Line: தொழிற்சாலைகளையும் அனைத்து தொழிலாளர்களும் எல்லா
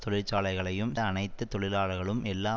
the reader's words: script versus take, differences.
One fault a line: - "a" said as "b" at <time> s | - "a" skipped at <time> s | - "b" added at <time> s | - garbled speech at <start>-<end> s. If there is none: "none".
none